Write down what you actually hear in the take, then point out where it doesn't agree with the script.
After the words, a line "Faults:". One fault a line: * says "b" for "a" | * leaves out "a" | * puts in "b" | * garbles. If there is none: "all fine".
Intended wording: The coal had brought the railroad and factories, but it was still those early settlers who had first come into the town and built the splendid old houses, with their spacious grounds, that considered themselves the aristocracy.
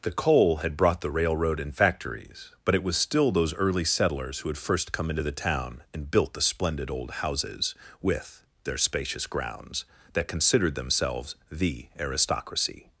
The coal had brought the railroad and factories, but it was still those early settlers who had first come into the town and built the splendid old houses, with their spacious grounds, that considered themselves the aristocracy.
Faults:
all fine